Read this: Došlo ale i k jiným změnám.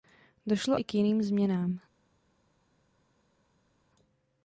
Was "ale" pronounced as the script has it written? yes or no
no